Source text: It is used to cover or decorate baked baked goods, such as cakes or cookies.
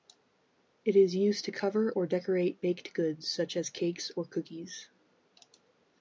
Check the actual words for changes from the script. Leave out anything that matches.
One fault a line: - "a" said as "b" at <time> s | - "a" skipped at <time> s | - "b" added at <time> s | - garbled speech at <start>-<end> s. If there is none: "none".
- "baked" skipped at 2.9 s